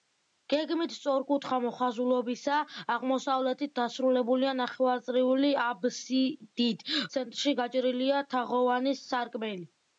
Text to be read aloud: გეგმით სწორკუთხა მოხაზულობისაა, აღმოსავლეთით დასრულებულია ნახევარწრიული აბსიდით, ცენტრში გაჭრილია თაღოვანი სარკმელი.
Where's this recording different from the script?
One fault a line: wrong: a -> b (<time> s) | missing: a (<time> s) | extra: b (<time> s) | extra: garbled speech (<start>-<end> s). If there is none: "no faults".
no faults